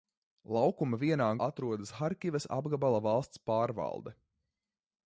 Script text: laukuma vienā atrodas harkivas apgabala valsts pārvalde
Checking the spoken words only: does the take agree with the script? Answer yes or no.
yes